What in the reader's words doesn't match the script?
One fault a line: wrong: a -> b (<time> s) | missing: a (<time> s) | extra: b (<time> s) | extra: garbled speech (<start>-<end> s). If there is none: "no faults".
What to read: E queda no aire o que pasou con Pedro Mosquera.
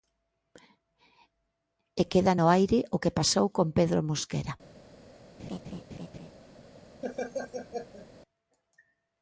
no faults